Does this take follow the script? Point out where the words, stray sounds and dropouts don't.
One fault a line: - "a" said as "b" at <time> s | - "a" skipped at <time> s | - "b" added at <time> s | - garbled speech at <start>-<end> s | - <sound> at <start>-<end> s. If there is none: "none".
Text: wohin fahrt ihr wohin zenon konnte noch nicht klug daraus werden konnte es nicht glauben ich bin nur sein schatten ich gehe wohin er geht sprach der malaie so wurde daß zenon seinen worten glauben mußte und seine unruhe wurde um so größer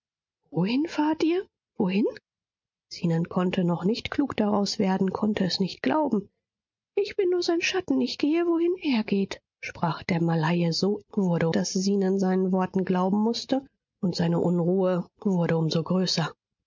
none